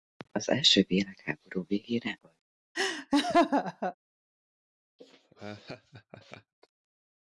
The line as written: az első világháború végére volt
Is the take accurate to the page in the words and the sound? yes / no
no